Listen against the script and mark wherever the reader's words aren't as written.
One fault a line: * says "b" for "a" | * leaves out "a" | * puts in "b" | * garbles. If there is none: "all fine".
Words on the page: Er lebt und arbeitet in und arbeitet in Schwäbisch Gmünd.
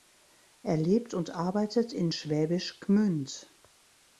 * leaves out "und arbeitet in"